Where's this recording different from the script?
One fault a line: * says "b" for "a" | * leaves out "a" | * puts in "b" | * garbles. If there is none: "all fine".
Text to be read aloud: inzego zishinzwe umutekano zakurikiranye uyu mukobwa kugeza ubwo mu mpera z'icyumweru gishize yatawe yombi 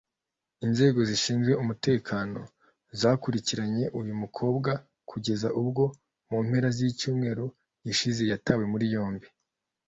* puts in "muri"